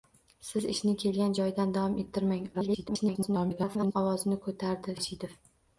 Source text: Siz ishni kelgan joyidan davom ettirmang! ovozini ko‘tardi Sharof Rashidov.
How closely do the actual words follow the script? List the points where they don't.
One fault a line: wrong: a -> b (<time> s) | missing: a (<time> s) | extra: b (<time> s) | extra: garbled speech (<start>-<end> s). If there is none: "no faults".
extra: garbled speech (2.5-3.9 s)
missing: Sharof (5.0 s)